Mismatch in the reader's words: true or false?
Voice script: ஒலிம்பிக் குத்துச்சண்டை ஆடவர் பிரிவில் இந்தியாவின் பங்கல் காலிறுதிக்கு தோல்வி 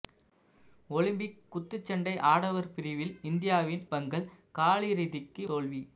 false